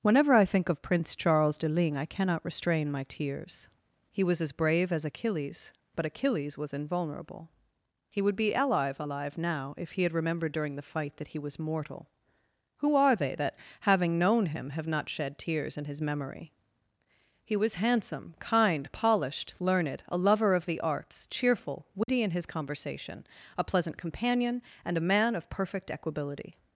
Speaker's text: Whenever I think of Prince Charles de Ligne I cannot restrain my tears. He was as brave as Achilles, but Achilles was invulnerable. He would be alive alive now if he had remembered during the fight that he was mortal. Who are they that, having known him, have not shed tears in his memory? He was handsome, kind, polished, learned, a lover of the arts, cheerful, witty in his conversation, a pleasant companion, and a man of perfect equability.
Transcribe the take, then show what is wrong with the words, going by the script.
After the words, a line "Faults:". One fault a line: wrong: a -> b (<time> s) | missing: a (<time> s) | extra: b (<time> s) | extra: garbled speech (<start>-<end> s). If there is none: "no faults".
Whenever I think of Prince Charles de Ligne I cannot restrain my tears. He was as brave as Achilles, but Achilles was invulnerable. He would be alive alive now if he had remembered during the fight that he was mortal. Who are they that, having known him, have not shed tears in his memory? He was handsome, kind, polished, learned, a lover of the arts, cheerful, witty in his conversation, a pleasant companion, and a man of perfect equability.
Faults:
no faults